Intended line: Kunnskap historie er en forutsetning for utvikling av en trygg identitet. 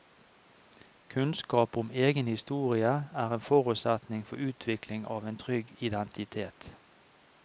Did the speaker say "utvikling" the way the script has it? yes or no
yes